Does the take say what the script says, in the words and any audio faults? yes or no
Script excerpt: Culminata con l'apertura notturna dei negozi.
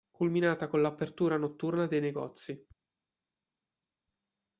yes